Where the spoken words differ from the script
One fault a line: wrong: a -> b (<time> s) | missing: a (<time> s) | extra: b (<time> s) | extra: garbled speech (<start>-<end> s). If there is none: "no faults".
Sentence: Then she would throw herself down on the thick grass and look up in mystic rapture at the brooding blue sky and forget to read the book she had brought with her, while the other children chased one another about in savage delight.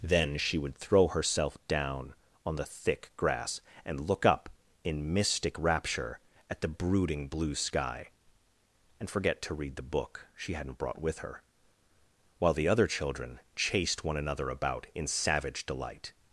wrong: had -> hadn't (10.5 s)